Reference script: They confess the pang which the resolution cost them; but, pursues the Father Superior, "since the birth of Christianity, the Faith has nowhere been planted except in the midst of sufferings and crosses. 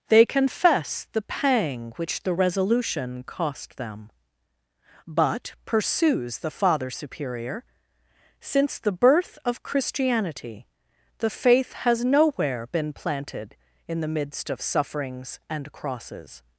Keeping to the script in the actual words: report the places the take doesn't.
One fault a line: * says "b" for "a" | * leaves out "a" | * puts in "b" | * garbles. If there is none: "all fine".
* leaves out "except"